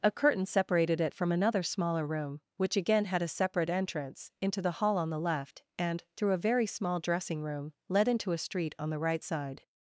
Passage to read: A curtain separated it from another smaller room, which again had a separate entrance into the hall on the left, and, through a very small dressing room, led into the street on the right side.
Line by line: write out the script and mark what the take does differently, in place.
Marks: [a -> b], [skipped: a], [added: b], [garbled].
A curtain separated it from another smaller room, which again had a separate entrance into the hall on the left, and, through a very small dressing room, led into [the -> a] street on the right side.